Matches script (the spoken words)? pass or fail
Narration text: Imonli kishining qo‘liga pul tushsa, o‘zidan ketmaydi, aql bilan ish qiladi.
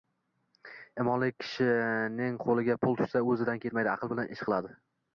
pass